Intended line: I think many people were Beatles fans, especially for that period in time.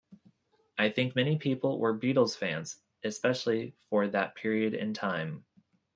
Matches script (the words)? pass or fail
pass